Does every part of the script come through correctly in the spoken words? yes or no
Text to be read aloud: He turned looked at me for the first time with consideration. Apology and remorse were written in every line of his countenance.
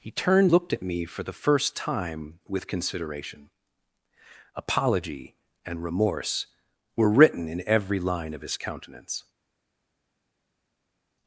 yes